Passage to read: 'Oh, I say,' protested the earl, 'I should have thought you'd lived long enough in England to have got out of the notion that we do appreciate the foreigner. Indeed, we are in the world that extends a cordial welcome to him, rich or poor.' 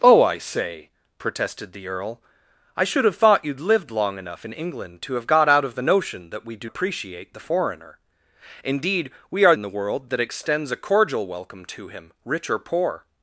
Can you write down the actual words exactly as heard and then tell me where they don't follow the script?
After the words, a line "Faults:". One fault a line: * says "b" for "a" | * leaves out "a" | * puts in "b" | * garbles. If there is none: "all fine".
'Oh, I say,' protested the earl, 'I should have thought you'd lived long enough in England to have got out of the notion that we do appreciate the foreigner. Indeed, we are in the world that extends a cordial welcome to him, rich or poor.'
Faults:
all fine